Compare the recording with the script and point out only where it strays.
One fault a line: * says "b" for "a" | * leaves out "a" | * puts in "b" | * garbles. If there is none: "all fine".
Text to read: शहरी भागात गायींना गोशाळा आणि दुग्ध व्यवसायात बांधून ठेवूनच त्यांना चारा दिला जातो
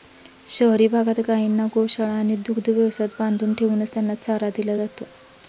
all fine